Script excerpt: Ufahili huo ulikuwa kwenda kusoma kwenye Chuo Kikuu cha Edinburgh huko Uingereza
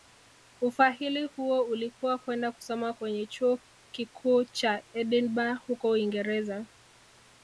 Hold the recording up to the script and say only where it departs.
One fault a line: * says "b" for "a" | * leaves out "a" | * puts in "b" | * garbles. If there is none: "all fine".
all fine